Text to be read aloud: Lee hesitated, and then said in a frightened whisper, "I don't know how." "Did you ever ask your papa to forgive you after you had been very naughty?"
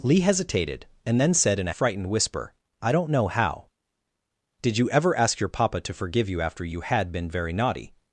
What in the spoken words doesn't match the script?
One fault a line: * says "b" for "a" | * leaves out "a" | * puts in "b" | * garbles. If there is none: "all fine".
all fine